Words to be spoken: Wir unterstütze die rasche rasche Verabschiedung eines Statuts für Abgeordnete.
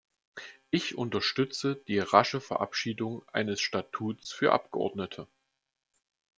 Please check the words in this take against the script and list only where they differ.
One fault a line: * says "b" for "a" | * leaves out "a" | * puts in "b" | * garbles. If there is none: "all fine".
* says "Ich" for "Wir"
* leaves out "rasche"